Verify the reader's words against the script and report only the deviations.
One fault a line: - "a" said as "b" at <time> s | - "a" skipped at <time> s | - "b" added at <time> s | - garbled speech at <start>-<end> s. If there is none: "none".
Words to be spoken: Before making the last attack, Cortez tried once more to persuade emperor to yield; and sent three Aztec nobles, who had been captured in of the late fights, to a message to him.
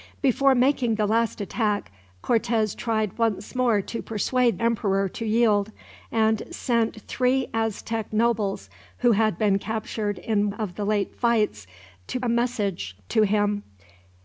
none